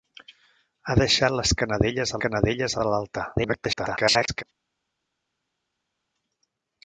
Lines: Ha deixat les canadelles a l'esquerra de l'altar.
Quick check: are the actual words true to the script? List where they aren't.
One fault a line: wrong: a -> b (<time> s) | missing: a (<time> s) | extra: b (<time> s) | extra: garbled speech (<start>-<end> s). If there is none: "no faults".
wrong: l'esquerra -> canadelles (2.2 s)
extra: garbled speech (3.4-4.4 s)